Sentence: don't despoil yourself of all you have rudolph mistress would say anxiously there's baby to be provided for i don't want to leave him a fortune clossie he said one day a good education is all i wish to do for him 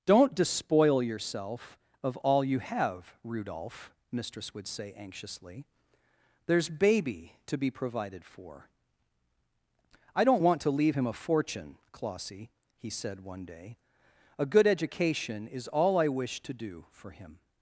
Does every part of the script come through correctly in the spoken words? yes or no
yes